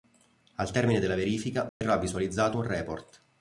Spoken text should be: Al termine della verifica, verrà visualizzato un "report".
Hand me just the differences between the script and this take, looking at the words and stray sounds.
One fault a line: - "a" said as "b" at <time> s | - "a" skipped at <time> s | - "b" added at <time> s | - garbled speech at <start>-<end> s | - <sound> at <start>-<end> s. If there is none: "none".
- dropout at 1.7-1.8 s